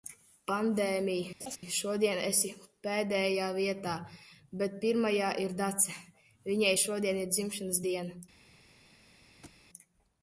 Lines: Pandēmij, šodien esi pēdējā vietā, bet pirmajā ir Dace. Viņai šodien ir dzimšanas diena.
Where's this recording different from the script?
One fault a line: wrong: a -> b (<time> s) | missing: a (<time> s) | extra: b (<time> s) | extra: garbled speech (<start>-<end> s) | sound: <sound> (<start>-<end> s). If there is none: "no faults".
sound: laugh (1.4-1.6 s)
sound: thud (9.4-9.6 s)